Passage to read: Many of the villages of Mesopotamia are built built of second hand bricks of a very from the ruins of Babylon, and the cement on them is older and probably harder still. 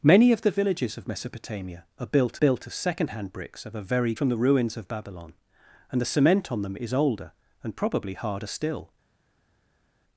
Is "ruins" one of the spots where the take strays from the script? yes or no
no